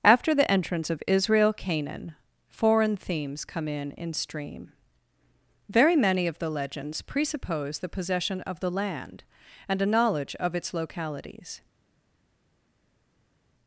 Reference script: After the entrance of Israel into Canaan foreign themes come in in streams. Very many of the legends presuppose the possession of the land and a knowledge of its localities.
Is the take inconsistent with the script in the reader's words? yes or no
yes